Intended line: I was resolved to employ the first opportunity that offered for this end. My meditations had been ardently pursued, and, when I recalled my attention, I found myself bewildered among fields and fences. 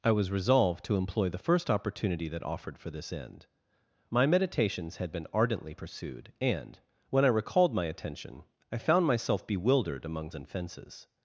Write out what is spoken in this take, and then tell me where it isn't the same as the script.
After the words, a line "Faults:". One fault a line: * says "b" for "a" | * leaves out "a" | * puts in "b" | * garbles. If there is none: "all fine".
I was resolved to employ the first opportunity that offered for this end. My meditations had been ardently pursued, and, when I recalled my attention, I found myself bewildered among and fences.
Faults:
* leaves out "fields"